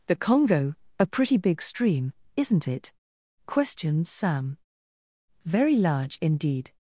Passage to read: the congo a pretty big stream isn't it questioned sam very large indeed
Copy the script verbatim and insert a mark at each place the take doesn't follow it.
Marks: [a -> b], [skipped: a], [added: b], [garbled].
the congo a pretty big stream isn't it questioned sam very large indeed